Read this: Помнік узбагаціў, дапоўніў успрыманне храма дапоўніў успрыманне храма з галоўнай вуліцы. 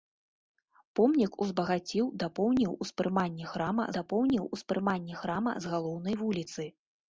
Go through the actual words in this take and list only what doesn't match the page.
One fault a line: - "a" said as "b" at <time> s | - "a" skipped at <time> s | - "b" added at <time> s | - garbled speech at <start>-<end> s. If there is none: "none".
none